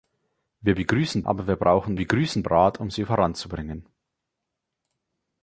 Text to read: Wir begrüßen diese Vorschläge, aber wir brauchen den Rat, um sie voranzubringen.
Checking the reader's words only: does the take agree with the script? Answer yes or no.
no